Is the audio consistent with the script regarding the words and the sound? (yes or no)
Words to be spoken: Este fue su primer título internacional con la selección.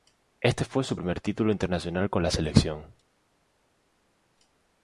yes